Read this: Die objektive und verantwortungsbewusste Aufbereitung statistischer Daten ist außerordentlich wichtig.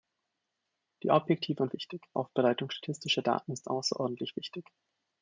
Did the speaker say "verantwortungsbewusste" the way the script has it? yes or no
no